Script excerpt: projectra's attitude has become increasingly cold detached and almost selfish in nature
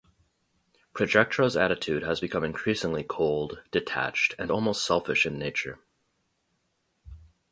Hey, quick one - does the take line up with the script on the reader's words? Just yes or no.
yes